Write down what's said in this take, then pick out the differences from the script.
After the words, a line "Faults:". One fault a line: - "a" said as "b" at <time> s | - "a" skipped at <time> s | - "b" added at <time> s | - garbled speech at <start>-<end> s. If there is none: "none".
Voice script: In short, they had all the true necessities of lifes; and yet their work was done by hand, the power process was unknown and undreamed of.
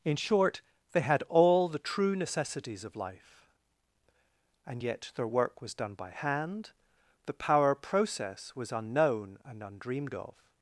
In short, they had all the true necessities of life; and yet their work was done by hand, the power process was unknown and undreamed of.
Faults:
- "lifes" said as "life" at 3.0 s